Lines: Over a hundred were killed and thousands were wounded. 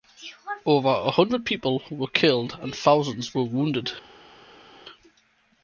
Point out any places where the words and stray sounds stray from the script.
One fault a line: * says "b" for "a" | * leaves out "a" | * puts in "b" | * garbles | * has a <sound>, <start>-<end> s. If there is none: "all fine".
* puts in "people"